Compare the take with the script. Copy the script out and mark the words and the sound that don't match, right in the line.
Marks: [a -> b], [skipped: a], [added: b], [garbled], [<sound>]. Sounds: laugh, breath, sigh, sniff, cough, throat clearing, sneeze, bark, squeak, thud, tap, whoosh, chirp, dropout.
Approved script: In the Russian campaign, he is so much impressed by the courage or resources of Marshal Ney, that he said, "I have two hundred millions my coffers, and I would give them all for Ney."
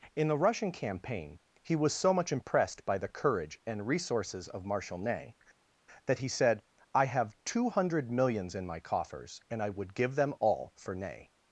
In the Russian campaign, he [is -> was] so much impressed by the courage [or -> and] resources of Marshal Ney, that he said, "I have two hundred millions [added: in] my coffers, and I would give them all for Ney."